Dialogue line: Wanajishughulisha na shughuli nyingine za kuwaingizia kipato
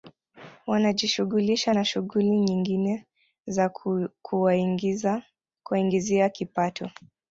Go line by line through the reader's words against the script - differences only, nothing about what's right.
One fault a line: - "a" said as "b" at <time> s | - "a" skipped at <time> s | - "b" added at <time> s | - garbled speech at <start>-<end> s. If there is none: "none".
none